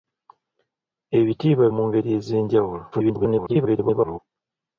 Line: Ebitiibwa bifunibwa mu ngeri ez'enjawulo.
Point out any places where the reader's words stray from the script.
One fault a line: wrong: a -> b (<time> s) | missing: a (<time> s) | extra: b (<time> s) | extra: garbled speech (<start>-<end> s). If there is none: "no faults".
missing: bifunibwa (1.6 s)
extra: garbled speech (2.9-4.2 s)